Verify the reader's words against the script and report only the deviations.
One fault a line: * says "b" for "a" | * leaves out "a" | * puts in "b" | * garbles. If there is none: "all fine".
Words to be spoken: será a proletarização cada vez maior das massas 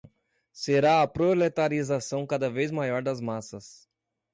all fine